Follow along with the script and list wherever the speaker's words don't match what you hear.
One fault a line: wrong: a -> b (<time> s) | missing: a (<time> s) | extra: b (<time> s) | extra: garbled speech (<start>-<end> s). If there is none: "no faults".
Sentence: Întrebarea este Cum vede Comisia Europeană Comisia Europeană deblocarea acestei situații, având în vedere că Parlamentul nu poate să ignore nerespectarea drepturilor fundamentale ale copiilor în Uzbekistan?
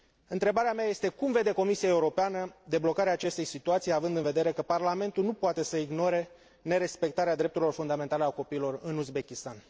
extra: mea (0.7 s)
missing: Comisia Europeană (2.5 s)